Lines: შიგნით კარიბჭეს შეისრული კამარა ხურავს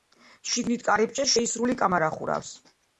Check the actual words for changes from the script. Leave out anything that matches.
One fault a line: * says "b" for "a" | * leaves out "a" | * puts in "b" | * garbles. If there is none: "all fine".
all fine